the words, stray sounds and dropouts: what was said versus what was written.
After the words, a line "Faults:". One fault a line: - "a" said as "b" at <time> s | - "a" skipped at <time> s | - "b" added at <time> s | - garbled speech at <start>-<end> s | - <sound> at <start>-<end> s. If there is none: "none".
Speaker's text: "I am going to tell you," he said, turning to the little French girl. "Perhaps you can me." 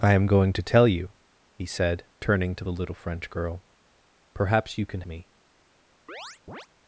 "I am going to tell you," he said, turning to the little French girl. "Perhaps you can me."
Faults:
- chirp at 6.1-6.7 s